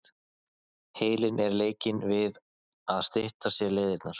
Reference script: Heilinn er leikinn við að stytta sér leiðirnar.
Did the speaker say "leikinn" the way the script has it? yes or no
yes